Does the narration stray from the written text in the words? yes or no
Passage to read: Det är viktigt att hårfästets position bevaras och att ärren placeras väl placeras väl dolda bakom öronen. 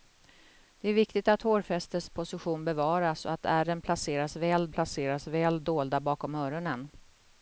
no